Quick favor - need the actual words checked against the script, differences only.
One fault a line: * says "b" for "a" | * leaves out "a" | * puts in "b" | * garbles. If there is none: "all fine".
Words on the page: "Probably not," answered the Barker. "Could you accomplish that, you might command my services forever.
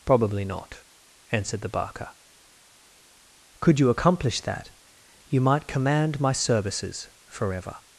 all fine